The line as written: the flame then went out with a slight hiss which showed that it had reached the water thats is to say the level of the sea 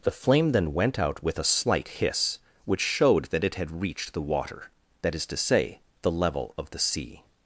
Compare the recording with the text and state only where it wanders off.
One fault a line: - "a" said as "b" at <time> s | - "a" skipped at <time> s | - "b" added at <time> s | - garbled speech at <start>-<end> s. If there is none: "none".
- "thats" said as "that" at 5.0 s